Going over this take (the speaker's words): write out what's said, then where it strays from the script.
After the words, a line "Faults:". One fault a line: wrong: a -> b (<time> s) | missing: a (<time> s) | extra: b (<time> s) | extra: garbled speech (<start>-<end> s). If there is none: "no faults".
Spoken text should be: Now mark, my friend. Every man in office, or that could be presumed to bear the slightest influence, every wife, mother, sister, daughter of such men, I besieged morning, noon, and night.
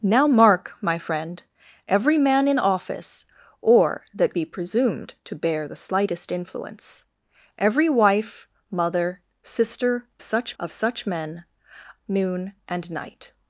Now mark, my friend. Every man in office, or that be presumed to bear the slightest influence, every wife, mother, sister, such of such men, noon, and night.
Faults:
missing: could (4.3 s)
wrong: daughter -> such (10.2 s)
missing: I besieged morning (11.4 s)